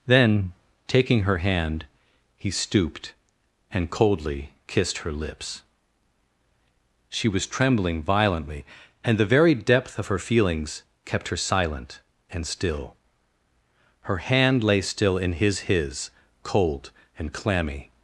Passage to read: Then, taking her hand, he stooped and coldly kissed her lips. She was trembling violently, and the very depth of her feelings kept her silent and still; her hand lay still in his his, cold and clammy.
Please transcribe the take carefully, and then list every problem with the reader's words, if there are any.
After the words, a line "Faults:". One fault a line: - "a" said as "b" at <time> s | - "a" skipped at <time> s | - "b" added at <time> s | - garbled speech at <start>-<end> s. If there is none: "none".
Then, taking her hand, he stooped and coldly kissed her lips. She was trembling violently, and the very depth of her feelings kept her silent and still; her hand lay still in his his, cold and clammy.
Faults:
none